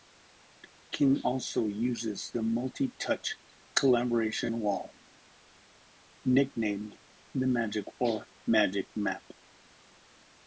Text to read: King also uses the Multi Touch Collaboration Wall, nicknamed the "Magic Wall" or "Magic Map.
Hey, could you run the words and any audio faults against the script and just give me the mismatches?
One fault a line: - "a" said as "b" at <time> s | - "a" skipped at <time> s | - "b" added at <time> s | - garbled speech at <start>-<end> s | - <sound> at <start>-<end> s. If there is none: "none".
- "Wall" skipped at 7.9 s